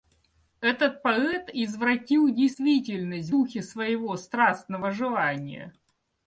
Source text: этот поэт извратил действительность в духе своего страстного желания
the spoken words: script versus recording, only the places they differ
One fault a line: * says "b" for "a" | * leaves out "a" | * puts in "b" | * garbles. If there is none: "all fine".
* leaves out "в"